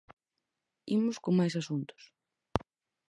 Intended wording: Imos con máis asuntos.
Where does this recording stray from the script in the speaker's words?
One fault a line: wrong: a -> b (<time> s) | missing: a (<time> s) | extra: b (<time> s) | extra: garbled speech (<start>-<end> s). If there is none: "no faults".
no faults